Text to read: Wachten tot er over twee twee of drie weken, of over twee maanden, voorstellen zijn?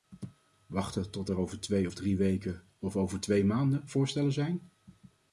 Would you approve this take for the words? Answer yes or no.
no